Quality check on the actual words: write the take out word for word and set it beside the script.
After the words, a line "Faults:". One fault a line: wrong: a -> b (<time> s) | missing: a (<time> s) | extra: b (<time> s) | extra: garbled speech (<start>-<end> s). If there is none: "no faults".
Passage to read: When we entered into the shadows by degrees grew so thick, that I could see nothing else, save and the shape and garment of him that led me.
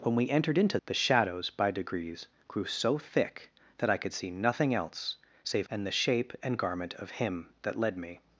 When we entered into the shadows by degrees grew so thick, that I could see nothing else, save and the shape and garment of him that led me.
Faults:
no faults